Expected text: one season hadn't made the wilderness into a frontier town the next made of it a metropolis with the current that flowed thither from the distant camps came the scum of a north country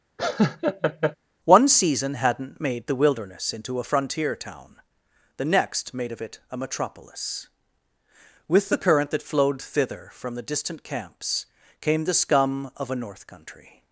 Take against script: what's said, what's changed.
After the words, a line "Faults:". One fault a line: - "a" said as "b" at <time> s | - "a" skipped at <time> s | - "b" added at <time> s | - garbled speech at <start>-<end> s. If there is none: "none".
one season hadn't made the wilderness into a frontier town the next made of it a metropolis with the current that flowed thither from the distant camps came the scum of a north country
Faults:
none